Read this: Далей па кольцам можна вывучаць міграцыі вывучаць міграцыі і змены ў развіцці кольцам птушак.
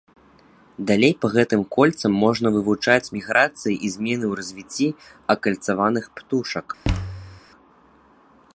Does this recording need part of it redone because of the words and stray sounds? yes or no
yes